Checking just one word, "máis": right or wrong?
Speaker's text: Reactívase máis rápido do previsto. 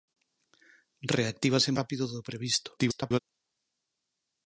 wrong